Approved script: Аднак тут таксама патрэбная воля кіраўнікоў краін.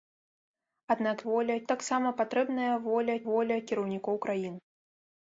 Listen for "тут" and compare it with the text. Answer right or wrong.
wrong